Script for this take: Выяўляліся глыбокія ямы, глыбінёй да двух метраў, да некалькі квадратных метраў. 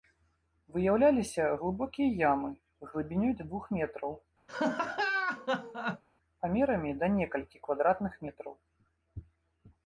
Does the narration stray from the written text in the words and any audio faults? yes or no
yes